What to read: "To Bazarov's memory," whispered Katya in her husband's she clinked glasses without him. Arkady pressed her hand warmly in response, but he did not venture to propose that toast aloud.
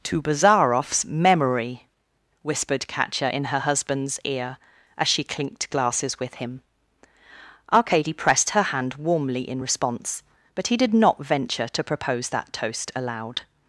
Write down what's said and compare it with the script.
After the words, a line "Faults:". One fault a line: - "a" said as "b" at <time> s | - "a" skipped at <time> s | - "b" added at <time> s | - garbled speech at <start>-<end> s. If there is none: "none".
"To Bazarov's memory," whispered Katya in her husband's ear as she clinked glasses with him. Arkady pressed her hand warmly in response, but he did not venture to propose that toast aloud.
Faults:
- "ear as" added at 4.2 s
- "without" said as "with" at 6.2 s